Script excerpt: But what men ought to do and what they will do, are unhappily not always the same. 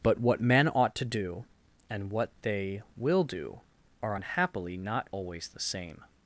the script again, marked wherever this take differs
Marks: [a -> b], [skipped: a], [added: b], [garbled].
But what men ought to do and what they will do, are unhappily not always the same.